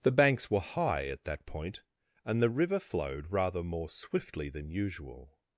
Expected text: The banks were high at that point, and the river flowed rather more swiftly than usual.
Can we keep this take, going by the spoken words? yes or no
yes